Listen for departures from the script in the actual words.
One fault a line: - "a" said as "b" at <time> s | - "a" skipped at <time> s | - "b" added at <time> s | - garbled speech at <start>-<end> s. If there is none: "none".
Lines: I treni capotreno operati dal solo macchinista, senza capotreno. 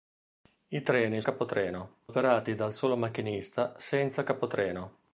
none